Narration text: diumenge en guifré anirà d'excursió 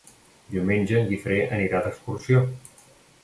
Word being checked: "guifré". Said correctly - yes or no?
yes